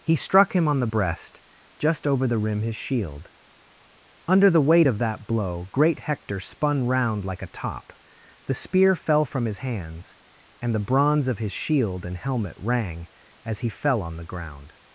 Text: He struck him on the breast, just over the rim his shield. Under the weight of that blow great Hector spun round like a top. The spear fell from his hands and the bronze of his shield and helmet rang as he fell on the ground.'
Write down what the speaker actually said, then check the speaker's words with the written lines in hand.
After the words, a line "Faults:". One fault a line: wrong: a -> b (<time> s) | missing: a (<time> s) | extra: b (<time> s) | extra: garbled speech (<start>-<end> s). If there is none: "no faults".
He struck him on the breast, just over the rim his shield. Under the weight of that blow great Hector spun round like a top. The spear fell from his hands and the bronze of his shield and helmet rang as he fell on the ground.'
Faults:
no faults